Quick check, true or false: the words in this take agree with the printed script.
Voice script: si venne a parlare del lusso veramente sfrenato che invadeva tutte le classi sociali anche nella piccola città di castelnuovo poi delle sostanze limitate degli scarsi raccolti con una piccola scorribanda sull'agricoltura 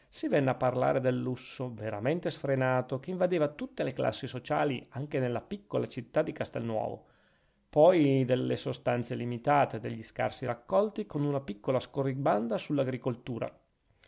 true